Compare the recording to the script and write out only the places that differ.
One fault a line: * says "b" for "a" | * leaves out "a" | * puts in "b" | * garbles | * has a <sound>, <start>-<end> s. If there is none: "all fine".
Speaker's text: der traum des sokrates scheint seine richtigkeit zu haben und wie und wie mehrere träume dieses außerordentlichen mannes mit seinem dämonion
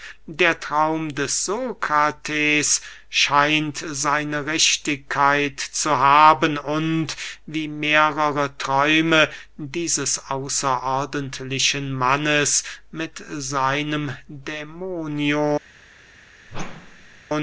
* leaves out "und wie"
* has a whoosh, 16.5-17.2 s